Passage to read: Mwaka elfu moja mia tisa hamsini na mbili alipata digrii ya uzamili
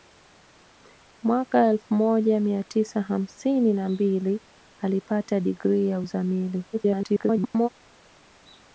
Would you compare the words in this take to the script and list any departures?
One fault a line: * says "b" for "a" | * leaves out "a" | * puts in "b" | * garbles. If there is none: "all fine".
* garbles